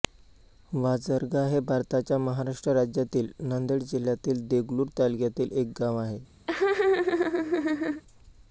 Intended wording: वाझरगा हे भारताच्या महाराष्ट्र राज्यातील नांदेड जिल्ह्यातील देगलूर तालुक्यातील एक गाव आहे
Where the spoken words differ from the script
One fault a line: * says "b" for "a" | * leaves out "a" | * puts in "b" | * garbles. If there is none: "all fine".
all fine